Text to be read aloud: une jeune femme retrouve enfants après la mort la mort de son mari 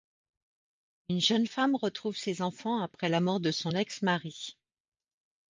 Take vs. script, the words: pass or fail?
fail